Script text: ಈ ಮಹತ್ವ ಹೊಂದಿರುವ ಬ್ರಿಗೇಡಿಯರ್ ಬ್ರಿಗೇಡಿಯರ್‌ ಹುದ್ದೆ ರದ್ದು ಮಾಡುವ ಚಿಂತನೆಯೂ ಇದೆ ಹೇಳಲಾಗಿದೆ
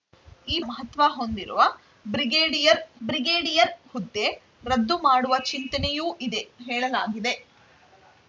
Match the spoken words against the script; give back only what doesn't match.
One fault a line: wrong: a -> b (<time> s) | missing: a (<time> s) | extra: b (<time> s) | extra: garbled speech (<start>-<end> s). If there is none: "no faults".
no faults